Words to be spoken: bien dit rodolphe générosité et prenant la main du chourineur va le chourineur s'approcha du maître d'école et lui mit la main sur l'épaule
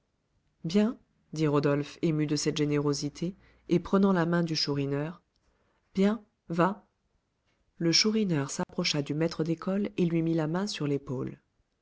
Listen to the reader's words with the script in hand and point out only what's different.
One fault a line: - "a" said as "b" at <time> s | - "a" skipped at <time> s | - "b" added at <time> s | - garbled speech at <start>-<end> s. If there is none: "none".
- "ému de cette" added at 2.0 s
- "bien" added at 5.9 s